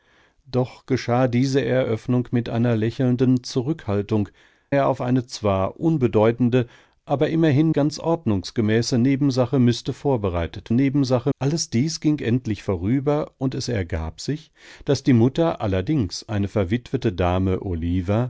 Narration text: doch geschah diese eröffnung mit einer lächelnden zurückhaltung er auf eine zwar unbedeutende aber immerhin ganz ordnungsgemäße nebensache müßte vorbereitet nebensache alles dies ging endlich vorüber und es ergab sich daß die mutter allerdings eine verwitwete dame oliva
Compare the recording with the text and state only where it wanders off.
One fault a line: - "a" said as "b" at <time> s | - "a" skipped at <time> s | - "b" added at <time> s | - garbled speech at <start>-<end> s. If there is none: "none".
none